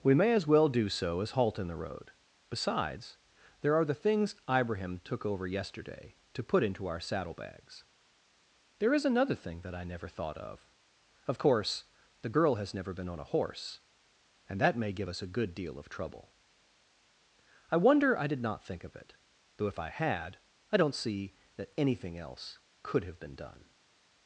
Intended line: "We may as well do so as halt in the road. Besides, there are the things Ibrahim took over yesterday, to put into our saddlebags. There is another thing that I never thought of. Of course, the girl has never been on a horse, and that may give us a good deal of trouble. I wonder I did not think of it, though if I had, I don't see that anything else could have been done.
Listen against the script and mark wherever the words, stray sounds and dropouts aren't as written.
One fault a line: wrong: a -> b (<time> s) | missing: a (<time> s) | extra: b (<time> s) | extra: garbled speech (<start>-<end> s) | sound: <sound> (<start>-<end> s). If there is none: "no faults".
no faults